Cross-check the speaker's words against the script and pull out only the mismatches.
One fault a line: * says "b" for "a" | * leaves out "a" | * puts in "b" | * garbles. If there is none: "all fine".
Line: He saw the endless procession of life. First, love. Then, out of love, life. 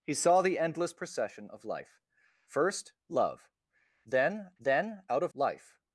* puts in "then"
* leaves out "love"